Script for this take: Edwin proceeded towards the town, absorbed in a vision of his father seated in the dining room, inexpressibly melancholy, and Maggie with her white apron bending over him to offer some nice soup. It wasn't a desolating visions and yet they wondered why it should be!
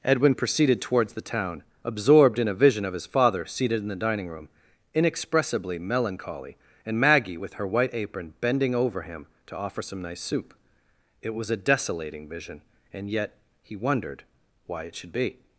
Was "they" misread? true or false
true